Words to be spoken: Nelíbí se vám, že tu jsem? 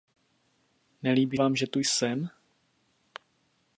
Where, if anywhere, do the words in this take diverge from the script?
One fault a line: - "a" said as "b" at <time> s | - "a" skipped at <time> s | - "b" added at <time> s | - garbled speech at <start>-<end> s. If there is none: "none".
- "se" skipped at 1.4 s